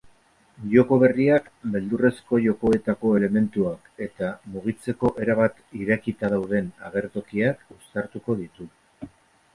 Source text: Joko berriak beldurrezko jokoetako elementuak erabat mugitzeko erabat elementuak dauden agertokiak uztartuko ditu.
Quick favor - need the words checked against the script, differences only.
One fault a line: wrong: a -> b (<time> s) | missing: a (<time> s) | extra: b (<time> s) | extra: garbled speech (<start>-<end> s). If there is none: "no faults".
wrong: erabat -> eta (4.1 s)
wrong: elementuak -> irekita (5.8 s)